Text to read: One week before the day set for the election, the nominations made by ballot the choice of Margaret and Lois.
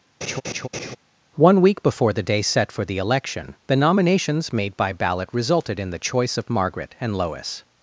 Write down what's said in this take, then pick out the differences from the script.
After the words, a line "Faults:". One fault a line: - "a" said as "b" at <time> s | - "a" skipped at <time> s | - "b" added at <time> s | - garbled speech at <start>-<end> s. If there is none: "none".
One week before the day set for the election, the nominations made by ballot resulted in the choice of Margaret and Lois.
Faults:
- "resulted in" added at 5.3 s